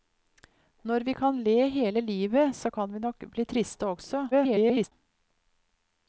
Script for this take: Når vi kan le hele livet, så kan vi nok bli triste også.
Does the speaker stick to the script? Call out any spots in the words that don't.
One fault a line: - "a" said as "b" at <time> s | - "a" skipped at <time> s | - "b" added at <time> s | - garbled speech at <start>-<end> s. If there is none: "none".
- garbled speech at 4.3-4.9 s